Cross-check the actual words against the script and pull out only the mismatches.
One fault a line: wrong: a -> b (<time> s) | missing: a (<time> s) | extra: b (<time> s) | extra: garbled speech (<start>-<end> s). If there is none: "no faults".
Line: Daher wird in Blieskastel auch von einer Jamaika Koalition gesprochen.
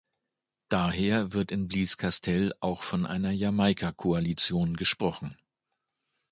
no faults